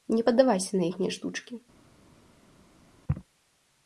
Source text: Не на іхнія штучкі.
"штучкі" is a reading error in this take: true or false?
false